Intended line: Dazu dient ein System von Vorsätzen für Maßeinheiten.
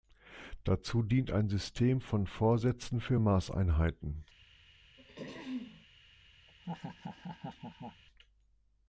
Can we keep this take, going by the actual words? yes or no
yes